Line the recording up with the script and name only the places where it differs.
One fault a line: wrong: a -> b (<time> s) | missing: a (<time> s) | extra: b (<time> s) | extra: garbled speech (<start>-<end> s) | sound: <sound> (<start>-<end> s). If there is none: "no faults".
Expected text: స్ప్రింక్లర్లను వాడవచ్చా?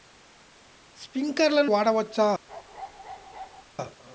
sound: bark (2.5-3.6 s)